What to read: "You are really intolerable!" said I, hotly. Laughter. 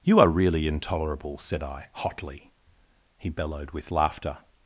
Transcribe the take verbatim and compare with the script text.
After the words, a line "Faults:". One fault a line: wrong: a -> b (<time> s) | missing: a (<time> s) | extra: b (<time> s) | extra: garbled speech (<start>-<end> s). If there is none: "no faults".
"You are really intolerable!" said I, hotly. He bellowed with laughter.
Faults:
extra: He bellowed with (3.2 s)